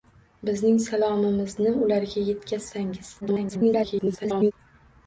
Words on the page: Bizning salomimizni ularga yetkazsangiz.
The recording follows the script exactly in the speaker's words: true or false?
false